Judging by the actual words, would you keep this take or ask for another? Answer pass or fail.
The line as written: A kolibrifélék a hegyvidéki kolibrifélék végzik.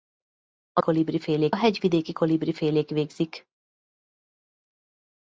pass